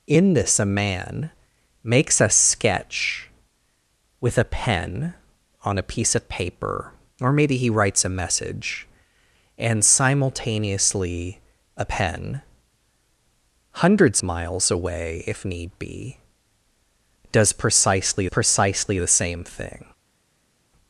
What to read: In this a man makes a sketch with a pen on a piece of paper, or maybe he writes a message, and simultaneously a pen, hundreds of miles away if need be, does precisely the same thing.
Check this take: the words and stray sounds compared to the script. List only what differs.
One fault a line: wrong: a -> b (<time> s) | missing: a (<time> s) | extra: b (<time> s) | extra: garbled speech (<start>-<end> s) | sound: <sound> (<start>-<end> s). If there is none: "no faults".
missing: of (14.2 s)
extra: precisely (18.3 s)